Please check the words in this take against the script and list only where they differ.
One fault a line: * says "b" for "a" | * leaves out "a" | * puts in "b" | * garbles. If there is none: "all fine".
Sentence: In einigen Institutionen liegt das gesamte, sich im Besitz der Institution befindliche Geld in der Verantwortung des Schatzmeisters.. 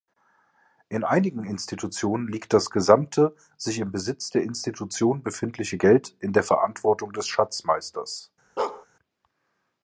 all fine